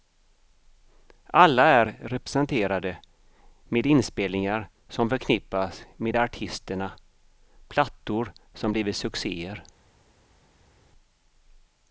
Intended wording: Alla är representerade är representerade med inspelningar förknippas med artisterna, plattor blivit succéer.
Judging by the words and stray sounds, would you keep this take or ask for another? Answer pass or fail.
fail